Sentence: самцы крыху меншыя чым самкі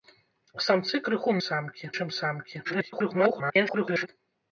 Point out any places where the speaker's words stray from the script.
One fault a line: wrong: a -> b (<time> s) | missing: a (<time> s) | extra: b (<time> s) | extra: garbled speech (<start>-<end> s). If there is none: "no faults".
wrong: меншыя -> самкі (1.5 s)
extra: garbled speech (2.6-4.1 s)